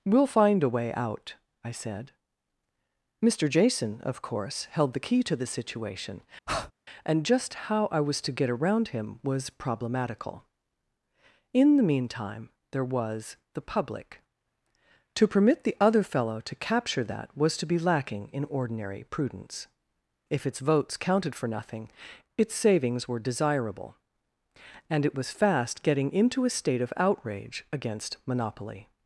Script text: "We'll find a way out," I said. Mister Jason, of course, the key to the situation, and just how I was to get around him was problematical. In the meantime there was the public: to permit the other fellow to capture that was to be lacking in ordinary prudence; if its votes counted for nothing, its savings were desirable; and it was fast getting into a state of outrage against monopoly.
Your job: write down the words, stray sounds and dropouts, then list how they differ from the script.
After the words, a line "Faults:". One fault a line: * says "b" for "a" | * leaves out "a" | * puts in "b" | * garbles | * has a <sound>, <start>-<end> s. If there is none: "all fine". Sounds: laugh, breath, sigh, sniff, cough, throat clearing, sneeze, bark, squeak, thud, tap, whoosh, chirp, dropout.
"We'll find a way out," I said. Mister Jason, of course, held the key to the situation, and just how I was to get around him was problematical. In the meantime there was the public: to permit the other fellow to capture that was to be lacking in ordinary prudence; if its votes counted for nothing, its savings were desirable; and it was fast getting into a state of outrage against monopoly.
Faults:
* puts in "held"
* has a breath, 6.5-6.7 s